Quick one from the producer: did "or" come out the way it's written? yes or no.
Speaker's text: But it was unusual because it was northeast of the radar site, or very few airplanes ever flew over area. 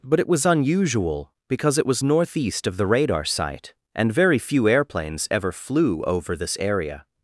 no